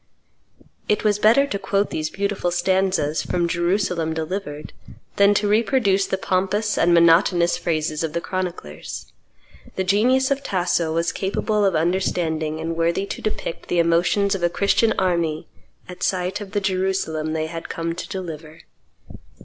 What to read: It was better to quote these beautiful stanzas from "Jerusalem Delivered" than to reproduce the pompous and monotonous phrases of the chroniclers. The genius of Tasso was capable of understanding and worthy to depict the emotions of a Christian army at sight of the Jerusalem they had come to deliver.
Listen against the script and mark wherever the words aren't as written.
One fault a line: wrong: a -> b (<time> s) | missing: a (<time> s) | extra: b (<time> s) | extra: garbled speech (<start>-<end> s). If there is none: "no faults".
no faults